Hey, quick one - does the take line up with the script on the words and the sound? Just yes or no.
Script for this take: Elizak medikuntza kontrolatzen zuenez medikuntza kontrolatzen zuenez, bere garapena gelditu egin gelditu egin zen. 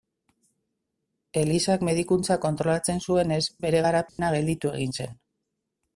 no